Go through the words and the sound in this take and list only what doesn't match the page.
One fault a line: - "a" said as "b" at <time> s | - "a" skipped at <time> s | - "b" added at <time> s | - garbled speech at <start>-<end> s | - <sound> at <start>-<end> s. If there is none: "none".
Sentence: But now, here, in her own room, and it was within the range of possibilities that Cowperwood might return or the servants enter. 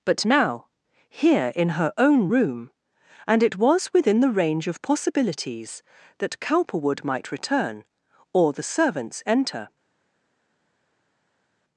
none